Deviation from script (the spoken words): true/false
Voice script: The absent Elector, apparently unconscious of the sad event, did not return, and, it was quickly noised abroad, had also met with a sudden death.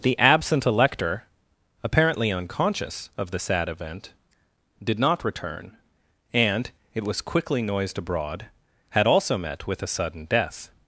false